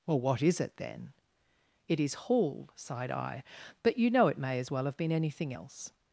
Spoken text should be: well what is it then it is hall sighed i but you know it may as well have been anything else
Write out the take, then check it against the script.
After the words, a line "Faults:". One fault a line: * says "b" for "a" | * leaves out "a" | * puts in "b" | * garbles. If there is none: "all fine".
well what is it then it is hall sighed i but you know it may as well have been anything else
Faults:
all fine